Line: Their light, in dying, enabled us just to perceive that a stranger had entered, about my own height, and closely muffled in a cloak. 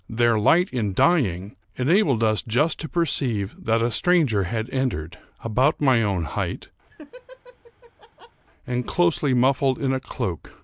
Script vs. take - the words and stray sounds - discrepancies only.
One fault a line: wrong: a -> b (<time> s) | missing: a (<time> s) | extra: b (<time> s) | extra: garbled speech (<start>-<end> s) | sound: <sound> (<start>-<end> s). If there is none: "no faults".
sound: laugh (6.9-8.4 s)